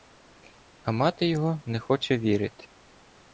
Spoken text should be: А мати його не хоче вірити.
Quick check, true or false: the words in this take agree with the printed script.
true